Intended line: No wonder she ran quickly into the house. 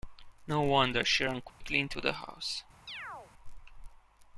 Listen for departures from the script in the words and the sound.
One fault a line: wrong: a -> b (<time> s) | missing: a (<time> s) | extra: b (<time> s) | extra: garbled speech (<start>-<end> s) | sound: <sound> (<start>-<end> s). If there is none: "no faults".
sound: dropout (1.5-1.6 s)
sound: chirp (2.9-3.3 s)